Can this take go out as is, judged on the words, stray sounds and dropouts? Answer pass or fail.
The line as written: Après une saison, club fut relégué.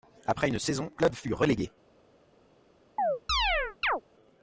fail